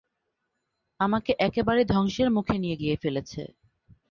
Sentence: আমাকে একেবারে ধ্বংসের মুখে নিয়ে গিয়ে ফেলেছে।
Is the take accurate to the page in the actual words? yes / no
yes